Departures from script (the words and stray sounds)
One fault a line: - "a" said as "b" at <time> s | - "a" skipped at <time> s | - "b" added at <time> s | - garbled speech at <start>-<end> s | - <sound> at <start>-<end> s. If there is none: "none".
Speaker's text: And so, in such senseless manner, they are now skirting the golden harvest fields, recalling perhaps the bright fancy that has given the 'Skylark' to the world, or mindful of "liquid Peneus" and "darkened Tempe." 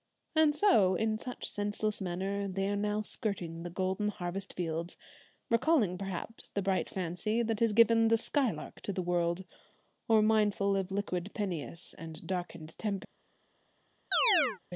- chirp at 14.1-14.6 s